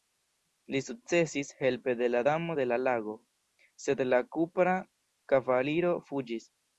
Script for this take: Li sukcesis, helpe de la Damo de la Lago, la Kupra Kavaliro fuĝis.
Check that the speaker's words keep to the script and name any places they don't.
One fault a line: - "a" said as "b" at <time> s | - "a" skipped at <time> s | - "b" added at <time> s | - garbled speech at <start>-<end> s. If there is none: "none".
- "sed" added at 3.9 s